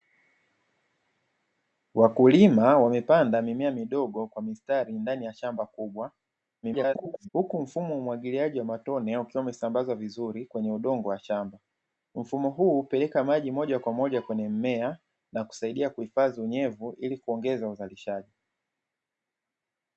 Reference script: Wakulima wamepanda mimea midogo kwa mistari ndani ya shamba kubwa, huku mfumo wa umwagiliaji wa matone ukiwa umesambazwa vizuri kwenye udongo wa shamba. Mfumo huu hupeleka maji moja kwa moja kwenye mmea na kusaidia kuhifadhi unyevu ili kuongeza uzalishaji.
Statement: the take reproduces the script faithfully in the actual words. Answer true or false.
false